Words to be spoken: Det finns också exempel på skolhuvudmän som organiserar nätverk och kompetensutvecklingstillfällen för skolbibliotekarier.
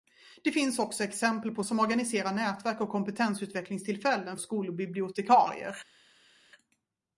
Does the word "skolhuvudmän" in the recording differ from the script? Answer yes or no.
yes